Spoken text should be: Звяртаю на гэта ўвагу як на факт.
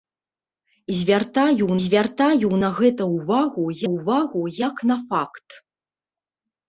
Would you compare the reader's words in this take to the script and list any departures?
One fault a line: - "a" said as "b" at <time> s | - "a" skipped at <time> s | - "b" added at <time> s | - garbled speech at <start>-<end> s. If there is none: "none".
- "звяртаю" added at 1.8 s
- "ўвагу" added at 3.9 s